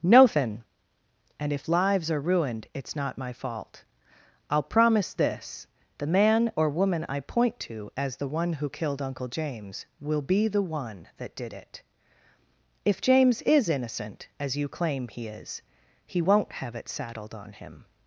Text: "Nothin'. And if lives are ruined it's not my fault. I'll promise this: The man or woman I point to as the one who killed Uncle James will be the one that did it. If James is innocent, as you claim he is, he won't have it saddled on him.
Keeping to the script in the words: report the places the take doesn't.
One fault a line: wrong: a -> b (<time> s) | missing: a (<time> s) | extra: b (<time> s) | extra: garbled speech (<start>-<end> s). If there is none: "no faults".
no faults